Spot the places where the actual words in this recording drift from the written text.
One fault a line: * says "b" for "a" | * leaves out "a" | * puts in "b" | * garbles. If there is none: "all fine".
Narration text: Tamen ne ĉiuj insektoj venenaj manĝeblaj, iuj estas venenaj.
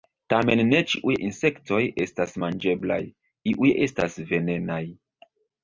* says "estas" for "venenaj"